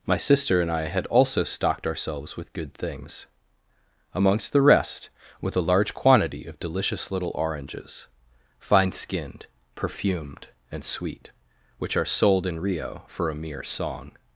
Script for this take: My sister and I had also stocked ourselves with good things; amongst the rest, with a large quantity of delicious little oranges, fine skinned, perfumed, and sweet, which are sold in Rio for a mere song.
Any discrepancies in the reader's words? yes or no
no